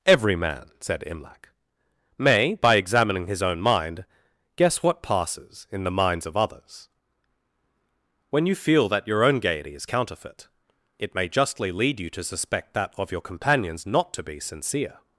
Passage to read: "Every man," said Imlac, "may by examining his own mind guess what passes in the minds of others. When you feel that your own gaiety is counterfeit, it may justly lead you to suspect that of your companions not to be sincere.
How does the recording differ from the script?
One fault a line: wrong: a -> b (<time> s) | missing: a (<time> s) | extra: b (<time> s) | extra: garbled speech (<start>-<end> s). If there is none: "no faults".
no faults